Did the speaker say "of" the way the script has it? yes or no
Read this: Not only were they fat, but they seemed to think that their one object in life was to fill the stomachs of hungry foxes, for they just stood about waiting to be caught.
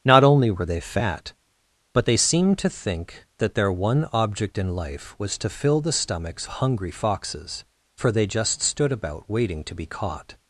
no